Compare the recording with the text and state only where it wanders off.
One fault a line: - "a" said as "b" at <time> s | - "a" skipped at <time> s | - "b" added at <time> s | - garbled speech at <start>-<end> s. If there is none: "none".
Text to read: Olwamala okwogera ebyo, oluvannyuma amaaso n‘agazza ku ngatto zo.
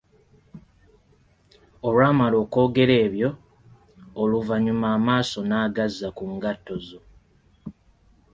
none